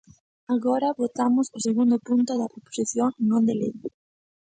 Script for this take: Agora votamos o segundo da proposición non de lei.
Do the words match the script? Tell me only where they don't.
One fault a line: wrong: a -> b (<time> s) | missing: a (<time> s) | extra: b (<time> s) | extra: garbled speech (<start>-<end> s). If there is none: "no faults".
extra: punto (2.1 s)